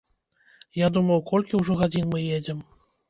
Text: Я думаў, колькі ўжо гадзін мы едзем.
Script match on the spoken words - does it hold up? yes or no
yes